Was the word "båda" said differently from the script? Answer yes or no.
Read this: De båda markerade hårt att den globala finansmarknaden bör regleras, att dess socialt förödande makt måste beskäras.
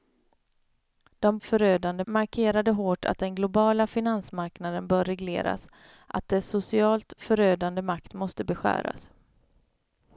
yes